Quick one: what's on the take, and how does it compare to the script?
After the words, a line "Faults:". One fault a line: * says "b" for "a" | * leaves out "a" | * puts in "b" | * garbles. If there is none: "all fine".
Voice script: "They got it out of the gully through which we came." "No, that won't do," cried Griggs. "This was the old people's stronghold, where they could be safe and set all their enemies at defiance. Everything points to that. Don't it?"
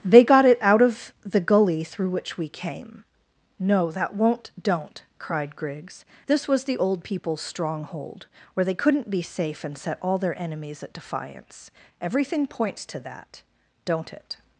"They got it out of the gully through which we came." "No, that won't don't," cried Griggs. "This was the old people's stronghold, where they couldn't be safe and set all their enemies at defiance. Everything points to that. Don't it?"
Faults:
* says "don't" for "do"
* says "couldn't" for "could"